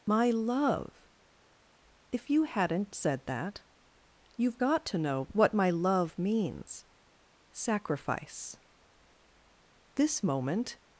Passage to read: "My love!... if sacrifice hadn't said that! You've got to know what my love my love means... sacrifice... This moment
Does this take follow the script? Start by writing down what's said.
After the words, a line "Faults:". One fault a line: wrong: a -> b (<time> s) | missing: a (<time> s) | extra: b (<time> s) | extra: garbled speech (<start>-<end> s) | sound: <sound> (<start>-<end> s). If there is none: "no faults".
"My love!... if you hadn't said that! You've got to know what my love means... sacrifice... This moment
Faults:
wrong: sacrifice -> you (2.3 s)
missing: my love (6.2 s)